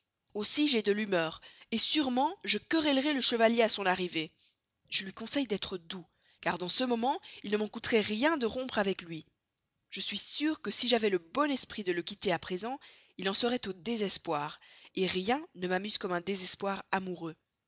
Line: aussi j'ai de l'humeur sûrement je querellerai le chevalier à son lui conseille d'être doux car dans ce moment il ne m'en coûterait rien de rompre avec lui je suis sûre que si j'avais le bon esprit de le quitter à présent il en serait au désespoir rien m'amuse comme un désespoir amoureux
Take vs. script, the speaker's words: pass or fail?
fail